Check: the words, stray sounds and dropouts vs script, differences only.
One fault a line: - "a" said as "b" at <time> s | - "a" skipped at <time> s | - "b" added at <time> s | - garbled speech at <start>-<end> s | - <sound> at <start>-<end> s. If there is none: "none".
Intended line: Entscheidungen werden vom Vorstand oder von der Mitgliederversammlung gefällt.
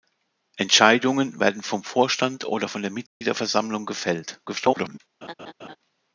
- dropout at 3.1-3.2 s
- garbled speech at 4.5-5.0 s
- laugh at 5.2-5.8 s